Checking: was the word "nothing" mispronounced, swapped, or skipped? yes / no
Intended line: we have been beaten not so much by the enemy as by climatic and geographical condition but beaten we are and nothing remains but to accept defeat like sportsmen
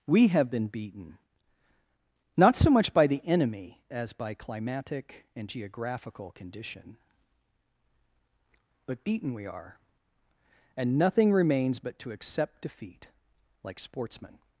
no